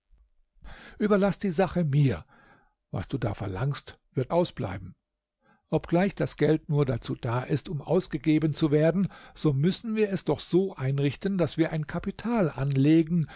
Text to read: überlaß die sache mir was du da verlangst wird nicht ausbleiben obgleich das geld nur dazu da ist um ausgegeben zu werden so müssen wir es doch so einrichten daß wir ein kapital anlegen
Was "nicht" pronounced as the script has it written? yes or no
no